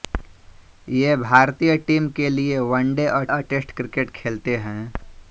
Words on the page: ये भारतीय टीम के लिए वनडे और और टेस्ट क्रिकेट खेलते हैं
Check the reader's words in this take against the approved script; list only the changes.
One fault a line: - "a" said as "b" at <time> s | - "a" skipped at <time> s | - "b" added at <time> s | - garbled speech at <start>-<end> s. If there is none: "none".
none